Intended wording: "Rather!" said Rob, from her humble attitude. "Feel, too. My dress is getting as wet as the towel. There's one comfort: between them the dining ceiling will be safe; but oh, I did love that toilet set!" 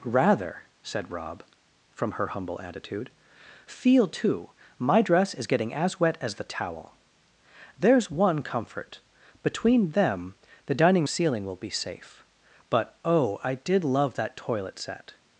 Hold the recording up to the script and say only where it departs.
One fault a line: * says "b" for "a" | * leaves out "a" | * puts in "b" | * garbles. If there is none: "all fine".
all fine